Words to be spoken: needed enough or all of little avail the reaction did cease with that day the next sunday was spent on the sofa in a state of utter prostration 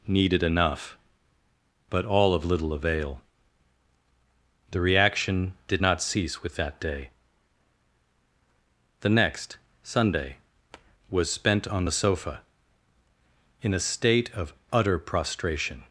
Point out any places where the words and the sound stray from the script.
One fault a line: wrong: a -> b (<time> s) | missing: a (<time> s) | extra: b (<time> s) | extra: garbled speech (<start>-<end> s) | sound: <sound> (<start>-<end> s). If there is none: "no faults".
wrong: or -> but (1.9 s)
extra: not (5.8 s)